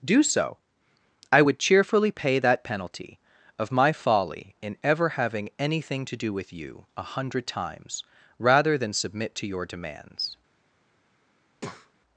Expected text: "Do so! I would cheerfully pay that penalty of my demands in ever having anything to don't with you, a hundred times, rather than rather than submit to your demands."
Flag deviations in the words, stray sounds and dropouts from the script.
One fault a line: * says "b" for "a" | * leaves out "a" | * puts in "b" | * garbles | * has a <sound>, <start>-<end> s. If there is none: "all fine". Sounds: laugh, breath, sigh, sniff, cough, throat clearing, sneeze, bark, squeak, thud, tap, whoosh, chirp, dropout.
* says "folly" for "demands"
* says "do" for "don't"
* leaves out "rather than"
* has a breath, 11.5-11.9 s